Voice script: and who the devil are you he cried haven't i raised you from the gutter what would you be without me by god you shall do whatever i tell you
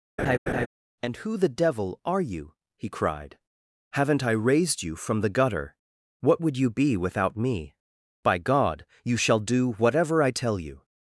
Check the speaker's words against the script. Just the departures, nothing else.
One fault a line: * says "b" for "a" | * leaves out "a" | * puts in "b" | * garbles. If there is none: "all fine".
all fine